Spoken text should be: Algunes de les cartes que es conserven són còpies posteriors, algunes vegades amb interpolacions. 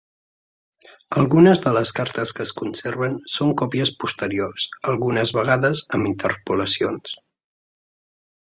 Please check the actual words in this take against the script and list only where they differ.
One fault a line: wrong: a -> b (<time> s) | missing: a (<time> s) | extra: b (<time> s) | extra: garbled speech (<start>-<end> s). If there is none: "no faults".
no faults